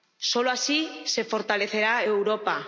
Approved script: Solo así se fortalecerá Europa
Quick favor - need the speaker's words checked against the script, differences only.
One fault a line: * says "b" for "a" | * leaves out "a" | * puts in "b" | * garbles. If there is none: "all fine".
all fine